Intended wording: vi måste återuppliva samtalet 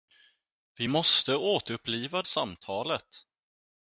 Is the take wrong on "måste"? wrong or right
right